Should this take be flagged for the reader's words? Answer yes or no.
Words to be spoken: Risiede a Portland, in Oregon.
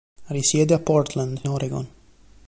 yes